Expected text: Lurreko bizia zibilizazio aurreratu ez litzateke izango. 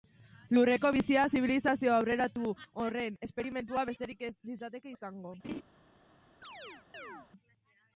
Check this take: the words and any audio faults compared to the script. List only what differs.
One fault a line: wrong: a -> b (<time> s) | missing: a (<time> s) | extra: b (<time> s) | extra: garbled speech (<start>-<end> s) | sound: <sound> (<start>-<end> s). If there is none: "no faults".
extra: horren esperimentua besterik (2.8 s)
sound: laugh (5.4-5.6 s)
sound: chirp (6.4-7.3 s)